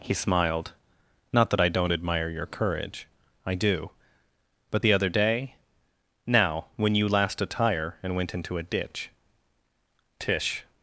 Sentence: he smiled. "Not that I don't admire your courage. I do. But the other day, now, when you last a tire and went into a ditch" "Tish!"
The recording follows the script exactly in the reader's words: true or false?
true